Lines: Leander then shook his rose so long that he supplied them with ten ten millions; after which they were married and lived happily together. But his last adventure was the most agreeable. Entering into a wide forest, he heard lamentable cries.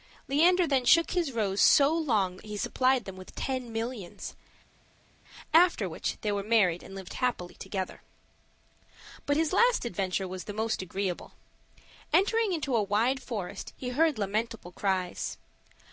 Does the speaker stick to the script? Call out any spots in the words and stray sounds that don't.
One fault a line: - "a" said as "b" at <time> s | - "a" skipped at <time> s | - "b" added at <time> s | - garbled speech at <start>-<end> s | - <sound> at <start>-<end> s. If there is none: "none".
- "ten" skipped at 3.7 s